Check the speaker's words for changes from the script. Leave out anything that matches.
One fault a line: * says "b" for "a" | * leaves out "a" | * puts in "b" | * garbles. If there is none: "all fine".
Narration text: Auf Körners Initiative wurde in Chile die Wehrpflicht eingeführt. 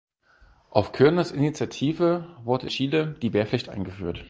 * leaves out "in"